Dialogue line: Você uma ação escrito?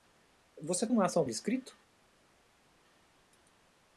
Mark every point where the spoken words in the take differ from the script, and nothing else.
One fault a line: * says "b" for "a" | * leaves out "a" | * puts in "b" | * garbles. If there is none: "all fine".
all fine